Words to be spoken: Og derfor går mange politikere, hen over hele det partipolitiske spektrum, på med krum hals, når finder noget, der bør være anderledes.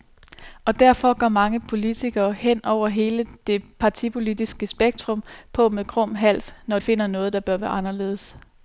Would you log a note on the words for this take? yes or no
no